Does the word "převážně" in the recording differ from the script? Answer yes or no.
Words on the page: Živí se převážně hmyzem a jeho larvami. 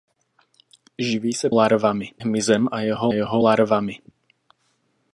yes